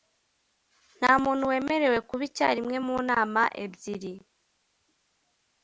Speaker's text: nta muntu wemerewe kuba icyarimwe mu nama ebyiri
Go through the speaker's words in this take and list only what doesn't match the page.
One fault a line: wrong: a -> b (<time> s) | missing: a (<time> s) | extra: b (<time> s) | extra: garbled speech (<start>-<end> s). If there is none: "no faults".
no faults